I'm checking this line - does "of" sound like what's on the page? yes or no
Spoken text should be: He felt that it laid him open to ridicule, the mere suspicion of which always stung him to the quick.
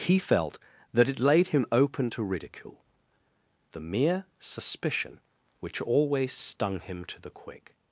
no